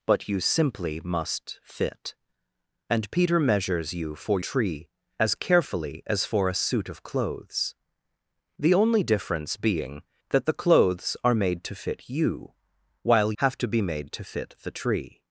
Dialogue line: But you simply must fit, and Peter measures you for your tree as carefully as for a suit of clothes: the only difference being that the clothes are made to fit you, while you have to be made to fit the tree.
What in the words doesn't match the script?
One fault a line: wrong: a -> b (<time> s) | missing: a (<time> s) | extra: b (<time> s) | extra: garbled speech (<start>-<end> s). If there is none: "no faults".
missing: your (4.4 s)
missing: you (13.3 s)